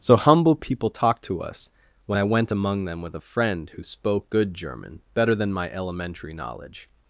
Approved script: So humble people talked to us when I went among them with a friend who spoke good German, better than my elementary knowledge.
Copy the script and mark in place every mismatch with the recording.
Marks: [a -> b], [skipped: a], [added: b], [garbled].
So humble people talked to us when I went among them with a friend who spoke good German, better than my elementary knowledge.